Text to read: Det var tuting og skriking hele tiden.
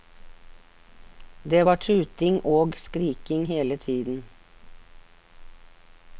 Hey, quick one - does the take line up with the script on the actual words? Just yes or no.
yes